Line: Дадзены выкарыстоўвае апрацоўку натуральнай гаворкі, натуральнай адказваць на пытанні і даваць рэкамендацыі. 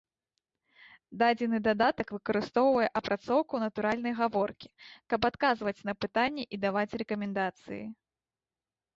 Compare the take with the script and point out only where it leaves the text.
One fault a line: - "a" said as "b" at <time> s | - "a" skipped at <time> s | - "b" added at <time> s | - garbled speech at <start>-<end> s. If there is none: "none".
- "дадатак" added at 1.6 s
- "натуральнай" said as "каб" at 5.1 s